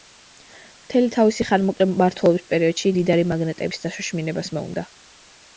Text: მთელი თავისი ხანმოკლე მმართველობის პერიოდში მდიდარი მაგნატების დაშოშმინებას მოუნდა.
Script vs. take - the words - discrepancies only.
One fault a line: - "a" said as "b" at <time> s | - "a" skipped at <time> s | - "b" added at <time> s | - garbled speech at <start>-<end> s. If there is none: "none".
none